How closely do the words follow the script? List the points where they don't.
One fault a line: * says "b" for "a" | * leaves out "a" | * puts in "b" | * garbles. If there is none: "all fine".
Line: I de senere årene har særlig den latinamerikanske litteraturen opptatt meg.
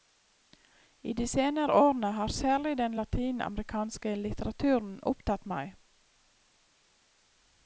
all fine